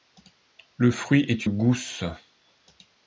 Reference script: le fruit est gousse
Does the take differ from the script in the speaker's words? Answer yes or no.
no